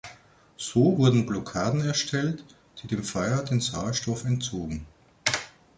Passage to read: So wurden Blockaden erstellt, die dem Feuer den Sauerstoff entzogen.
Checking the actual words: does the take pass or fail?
pass